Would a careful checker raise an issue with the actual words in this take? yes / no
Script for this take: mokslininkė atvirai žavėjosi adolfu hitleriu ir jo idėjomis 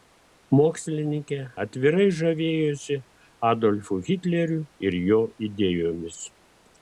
no